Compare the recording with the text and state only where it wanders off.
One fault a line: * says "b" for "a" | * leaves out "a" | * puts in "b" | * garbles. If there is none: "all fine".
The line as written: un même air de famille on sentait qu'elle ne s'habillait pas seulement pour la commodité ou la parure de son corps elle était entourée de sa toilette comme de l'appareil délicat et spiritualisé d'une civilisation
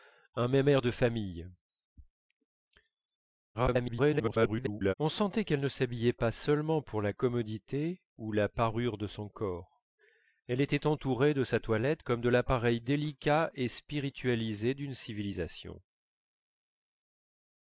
* garbles